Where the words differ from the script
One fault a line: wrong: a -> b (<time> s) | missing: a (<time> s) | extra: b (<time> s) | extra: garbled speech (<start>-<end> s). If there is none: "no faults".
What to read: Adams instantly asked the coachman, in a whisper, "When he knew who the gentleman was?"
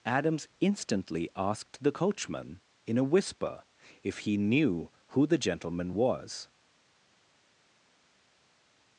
wrong: When -> If (4.0 s)